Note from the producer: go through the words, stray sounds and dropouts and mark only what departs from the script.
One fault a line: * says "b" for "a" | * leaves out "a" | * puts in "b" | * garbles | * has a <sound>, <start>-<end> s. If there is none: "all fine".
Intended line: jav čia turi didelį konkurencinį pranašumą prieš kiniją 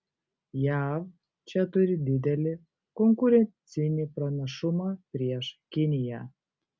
all fine